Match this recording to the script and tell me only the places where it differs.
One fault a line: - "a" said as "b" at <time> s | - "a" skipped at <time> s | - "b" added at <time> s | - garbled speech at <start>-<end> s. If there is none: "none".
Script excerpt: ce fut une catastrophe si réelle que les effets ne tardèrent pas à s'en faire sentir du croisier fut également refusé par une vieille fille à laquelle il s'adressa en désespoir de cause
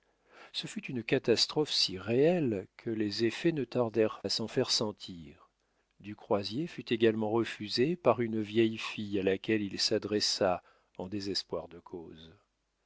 - "pas" skipped at 4.2 s